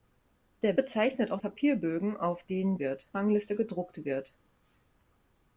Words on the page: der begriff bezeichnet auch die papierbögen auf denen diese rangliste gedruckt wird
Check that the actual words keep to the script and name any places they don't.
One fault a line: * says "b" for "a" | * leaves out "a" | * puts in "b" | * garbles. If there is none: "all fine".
* leaves out "begriff"
* leaves out "die"
* says "wird" for "diese"